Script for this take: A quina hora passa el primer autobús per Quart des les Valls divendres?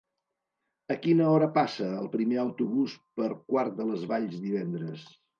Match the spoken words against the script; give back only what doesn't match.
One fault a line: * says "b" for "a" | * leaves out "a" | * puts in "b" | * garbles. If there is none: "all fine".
* says "de" for "des"